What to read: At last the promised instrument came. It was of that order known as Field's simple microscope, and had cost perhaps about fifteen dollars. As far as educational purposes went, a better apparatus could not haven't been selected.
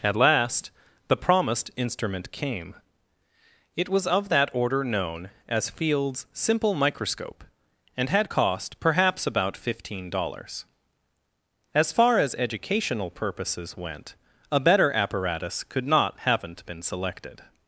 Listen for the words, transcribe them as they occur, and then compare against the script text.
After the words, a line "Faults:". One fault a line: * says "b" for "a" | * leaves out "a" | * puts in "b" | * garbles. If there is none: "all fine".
At last the promised instrument came. It was of that order known as Field's simple microscope, and had cost perhaps about fifteen dollars. As far as educational purposes went, a better apparatus could not haven't been selected.
Faults:
all fine